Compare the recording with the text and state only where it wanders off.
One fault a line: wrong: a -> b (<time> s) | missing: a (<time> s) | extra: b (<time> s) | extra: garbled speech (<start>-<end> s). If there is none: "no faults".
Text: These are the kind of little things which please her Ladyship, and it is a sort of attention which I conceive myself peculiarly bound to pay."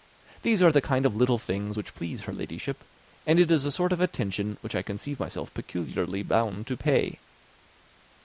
no faults